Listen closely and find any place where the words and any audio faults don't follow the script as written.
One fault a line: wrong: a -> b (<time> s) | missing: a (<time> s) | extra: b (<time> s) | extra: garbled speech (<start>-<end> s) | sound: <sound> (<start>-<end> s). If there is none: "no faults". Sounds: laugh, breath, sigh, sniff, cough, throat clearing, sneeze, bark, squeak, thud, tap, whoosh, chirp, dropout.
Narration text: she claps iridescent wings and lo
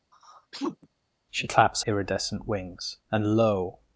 sound: sneeze (0.1-0.9 s)